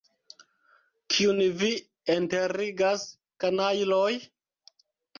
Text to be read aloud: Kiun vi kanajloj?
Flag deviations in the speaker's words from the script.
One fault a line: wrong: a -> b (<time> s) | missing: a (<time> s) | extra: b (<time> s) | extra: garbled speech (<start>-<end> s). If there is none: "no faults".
extra: enterigas (2.1 s)